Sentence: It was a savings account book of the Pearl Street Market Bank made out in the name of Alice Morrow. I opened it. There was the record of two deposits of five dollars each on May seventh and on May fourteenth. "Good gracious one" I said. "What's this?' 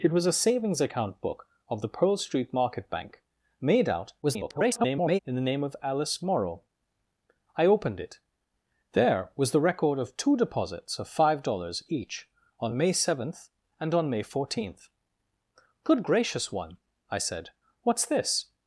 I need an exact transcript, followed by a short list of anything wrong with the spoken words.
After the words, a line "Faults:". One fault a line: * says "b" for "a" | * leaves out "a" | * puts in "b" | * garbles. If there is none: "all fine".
It was a savings account book of the Pearl Street Market Bank made out [garbled] in the name of Alice Morrow. I opened it. There was the record of two deposits of five dollars each on May seventh and on May fourteenth. "Good gracious one" I said. "What's this?'
Faults:
* garbles